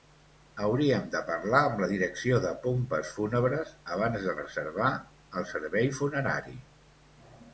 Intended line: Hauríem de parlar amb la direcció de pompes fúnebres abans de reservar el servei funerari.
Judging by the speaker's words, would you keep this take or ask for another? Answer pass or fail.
pass